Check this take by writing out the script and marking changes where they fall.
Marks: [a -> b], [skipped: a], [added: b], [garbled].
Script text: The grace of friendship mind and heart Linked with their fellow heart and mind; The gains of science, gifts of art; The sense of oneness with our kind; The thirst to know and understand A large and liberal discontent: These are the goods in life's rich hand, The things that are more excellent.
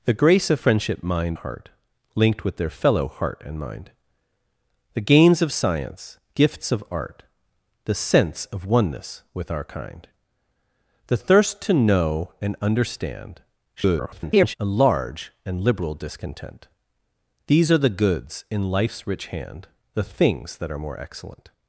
The grace of friendship mind [skipped: and] heart Linked with their fellow heart and mind; The gains of science, gifts of art; The sense of oneness with our kind; The thirst to know and understand [garbled] A large and liberal discontent: These are the goods in life's rich hand, The things that are more excellent.